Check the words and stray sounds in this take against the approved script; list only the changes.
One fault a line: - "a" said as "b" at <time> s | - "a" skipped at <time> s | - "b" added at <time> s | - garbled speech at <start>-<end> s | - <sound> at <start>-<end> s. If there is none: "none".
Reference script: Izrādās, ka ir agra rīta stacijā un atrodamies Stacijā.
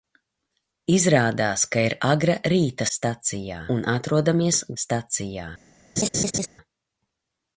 - laugh at 6.0-6.5 s